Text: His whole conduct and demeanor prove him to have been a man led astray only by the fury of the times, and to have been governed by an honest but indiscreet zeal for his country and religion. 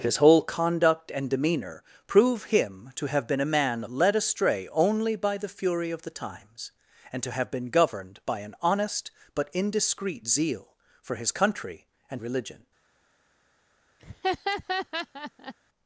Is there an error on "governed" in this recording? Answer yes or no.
no